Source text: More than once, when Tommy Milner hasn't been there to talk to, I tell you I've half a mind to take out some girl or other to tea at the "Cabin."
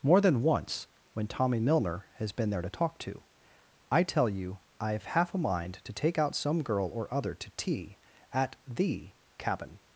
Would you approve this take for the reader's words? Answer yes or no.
no